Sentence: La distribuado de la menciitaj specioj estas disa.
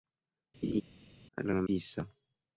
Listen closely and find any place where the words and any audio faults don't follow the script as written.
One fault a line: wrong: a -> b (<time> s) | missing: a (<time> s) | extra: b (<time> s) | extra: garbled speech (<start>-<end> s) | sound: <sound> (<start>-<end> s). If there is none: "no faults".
sound: laugh (0.6-0.8 s)
missing: distribuado (1.4 s)
missing: menciitaj specioj estas (1.6 s)